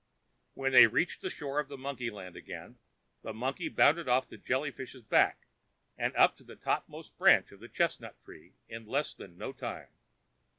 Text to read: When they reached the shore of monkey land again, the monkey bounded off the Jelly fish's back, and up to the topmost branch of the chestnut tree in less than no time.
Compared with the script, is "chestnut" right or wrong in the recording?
right